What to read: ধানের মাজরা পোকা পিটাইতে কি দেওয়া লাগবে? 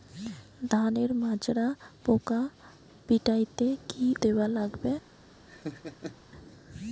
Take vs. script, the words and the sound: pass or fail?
fail